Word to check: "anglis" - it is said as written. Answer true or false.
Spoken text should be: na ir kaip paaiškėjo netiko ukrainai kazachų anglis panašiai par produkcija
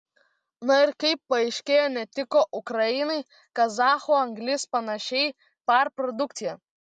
true